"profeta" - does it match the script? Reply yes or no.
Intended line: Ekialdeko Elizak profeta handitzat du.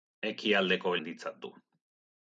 no